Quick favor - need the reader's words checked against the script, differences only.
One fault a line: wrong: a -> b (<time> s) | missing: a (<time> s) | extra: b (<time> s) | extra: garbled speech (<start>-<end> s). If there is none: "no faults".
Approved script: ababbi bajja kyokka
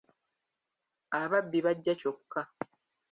no faults